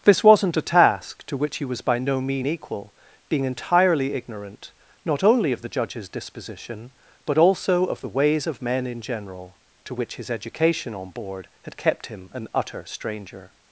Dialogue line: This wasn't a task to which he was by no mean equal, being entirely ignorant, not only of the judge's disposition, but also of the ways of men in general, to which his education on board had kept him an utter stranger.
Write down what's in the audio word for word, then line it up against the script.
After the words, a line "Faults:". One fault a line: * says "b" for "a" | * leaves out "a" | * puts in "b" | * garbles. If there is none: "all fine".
This wasn't a task to which he was by no mean equal, being entirely ignorant, not only of the judge's disposition, but also of the ways of men in general, to which his education on board had kept him an utter stranger.
Faults:
all fine